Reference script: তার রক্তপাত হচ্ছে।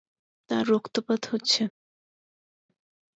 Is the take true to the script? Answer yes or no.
yes